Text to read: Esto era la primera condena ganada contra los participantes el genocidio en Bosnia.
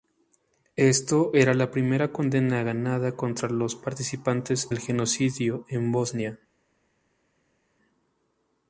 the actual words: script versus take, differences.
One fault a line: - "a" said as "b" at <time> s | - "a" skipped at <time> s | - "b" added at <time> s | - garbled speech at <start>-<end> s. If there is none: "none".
none